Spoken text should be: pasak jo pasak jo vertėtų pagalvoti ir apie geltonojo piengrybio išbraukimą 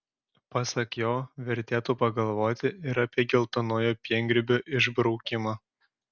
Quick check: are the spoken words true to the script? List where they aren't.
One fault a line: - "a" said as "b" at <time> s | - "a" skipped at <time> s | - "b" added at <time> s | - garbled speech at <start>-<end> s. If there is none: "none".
- "pasak jo" skipped at 1.1 s